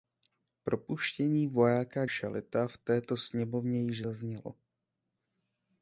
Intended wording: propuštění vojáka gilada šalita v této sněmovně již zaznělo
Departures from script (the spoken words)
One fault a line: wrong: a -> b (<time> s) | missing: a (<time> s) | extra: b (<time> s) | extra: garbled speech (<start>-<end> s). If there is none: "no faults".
missing: gilada (2.0 s)